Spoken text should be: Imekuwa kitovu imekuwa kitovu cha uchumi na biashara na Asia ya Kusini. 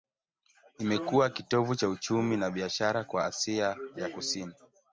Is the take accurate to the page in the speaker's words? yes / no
no